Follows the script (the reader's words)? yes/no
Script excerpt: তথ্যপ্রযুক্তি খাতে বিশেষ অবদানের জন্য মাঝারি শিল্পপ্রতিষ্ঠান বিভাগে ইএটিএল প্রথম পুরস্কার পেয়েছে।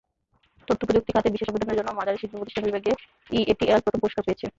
yes